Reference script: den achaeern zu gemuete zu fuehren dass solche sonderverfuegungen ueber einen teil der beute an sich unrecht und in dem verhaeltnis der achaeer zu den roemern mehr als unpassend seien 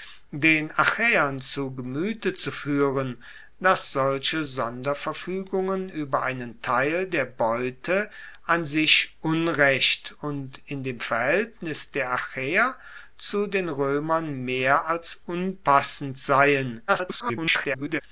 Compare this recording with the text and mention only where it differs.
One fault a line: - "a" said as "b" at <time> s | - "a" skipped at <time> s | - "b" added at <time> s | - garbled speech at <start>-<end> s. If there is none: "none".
- garbled speech at 16.9-18.0 s